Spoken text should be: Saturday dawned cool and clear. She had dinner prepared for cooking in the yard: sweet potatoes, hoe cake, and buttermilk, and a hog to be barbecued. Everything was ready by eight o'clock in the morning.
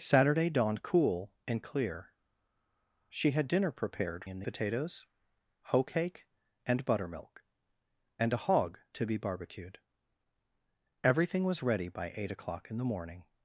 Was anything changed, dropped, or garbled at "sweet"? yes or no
yes